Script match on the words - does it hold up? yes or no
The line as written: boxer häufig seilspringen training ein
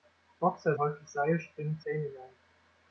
yes